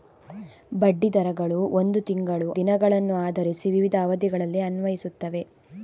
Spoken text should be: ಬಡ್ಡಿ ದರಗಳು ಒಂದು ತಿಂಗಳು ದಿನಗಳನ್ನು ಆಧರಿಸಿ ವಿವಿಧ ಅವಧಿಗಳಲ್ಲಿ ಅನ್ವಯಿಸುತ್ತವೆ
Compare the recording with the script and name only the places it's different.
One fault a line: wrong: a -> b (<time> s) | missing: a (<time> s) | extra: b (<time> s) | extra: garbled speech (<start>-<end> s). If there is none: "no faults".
no faults